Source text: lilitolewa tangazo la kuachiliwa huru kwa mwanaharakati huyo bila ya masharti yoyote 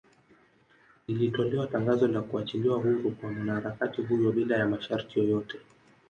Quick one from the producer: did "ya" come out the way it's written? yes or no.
yes